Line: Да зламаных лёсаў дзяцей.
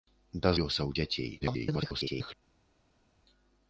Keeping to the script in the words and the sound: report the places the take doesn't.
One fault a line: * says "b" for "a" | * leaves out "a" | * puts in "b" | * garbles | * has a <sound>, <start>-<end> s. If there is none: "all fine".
* leaves out "зламаных"
* garbles